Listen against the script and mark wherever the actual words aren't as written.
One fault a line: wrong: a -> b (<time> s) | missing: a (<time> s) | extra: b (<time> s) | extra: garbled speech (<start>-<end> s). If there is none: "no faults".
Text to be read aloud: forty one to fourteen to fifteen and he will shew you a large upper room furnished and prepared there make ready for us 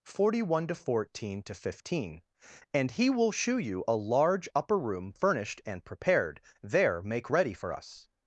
no faults